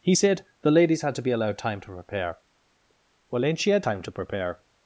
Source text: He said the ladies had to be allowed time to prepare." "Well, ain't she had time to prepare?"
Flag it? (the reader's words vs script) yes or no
no